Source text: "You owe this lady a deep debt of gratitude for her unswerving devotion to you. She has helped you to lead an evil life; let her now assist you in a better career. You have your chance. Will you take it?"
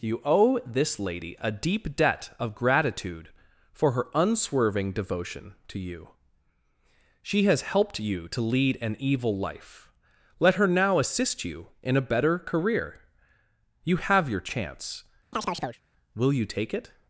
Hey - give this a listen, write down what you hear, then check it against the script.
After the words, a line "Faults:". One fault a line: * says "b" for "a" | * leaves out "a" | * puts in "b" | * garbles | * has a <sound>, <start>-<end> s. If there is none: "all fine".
"You owe this lady a deep debt of gratitude for her unswerving devotion to you. She has helped you to lead an evil life; let her now assist you in a better career. You have your chance. Will you take it?"
Faults:
* has a chirp, 15.3-15.8 s